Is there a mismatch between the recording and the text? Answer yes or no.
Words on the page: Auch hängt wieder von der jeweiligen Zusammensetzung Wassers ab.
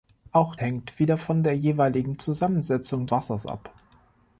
no